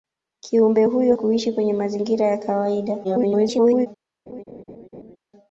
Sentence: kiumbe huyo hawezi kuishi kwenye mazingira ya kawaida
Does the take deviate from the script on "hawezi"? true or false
true